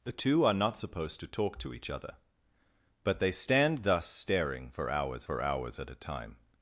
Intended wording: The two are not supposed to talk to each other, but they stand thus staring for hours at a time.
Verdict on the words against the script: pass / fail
fail